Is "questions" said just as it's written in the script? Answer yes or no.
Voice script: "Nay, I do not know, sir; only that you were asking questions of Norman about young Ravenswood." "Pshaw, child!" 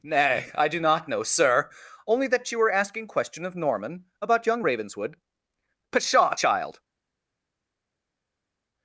no